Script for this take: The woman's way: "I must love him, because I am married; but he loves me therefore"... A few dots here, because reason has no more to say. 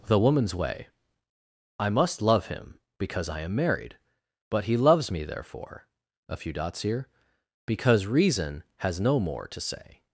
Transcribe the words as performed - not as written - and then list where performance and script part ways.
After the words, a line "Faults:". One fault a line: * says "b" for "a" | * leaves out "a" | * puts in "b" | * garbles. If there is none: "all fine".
The woman's way: "I must love him, because I am married; but he loves me therefore"... A few dots here, because reason has no more to say.
Faults:
all fine